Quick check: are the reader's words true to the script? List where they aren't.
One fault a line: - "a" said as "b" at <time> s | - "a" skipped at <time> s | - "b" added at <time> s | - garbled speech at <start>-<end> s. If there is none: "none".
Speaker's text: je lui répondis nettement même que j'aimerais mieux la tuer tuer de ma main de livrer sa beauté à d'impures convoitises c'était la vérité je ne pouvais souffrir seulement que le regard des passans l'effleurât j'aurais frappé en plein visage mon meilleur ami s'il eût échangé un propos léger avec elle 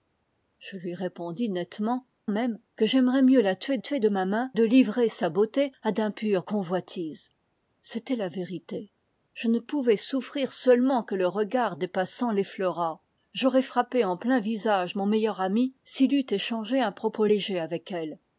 none